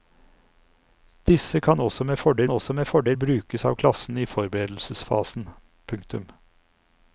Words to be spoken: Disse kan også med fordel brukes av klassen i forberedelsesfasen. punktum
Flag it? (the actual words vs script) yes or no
yes